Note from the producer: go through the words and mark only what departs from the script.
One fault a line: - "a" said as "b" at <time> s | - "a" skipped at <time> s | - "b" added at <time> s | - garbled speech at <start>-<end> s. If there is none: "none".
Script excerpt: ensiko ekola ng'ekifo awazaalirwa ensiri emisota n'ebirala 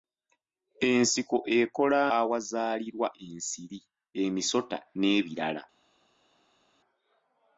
- "ng'ekifo" skipped at 2.0 s